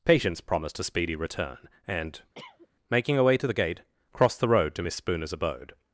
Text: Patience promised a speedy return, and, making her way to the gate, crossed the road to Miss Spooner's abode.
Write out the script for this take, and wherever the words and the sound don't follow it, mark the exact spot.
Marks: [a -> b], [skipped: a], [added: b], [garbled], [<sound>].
Patience promised a speedy return, and, [cough] making her way to the gate, crossed the road to Miss Spooner's abode.